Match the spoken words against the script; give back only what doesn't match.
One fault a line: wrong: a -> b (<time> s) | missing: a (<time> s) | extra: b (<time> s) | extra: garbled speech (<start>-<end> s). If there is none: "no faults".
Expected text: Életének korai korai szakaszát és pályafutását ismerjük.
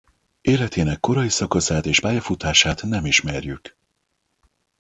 missing: korai (1.3 s)
extra: nem (2.8 s)